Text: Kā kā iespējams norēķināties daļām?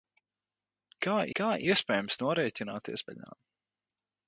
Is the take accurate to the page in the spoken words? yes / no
yes